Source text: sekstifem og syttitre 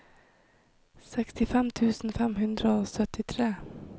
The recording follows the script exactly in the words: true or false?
false